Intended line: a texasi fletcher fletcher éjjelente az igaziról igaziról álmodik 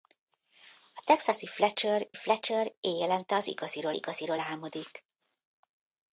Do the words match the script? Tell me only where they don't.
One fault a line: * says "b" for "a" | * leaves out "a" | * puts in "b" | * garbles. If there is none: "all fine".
all fine